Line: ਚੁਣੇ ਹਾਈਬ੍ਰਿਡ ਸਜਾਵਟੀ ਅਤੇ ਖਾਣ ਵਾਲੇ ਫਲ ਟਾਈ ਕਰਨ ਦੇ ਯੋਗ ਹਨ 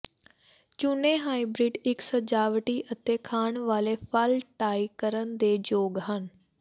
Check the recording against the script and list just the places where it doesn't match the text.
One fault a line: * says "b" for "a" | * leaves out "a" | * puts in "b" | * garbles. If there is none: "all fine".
* puts in "ਇੱਕ"